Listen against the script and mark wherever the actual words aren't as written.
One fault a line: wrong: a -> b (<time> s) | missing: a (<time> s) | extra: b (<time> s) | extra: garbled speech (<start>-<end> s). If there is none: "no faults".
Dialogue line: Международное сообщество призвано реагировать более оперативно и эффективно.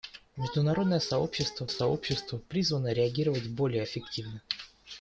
extra: сообщество (1.7 s)
missing: оперативно и (3.8 s)